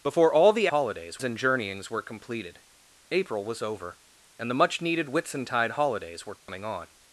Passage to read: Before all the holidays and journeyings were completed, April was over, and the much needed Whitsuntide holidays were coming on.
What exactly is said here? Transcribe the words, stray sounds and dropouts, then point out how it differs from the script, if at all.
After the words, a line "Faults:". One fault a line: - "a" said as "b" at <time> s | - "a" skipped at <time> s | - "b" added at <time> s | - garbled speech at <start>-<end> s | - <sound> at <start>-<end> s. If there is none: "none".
Before all the holidays and journeyings were completed, April was over, and the much needed Whitsuntide holidays were coming on.
Faults:
- dropout at 6.4-6.5 s